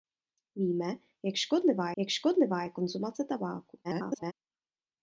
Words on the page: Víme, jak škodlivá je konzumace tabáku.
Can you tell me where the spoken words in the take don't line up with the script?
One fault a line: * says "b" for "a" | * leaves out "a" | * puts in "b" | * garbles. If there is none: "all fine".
* puts in "jak škodlivá"
* garbles